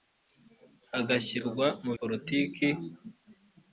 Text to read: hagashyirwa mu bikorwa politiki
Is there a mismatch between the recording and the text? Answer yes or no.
yes